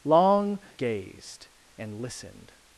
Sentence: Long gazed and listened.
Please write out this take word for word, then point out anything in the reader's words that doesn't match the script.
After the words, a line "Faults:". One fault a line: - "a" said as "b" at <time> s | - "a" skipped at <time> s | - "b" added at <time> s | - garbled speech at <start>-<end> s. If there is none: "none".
Long gazed and listened.
Faults:
none